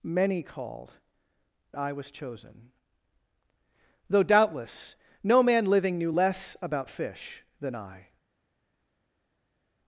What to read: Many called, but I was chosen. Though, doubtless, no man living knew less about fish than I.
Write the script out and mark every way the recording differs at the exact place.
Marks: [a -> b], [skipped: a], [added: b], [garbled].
Many called, [skipped: but] I was chosen. Though, doubtless, no man living knew less about fish than I.